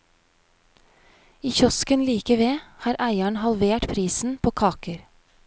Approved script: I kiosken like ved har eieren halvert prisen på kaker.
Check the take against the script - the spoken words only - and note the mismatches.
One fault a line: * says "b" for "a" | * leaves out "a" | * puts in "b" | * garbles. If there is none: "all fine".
all fine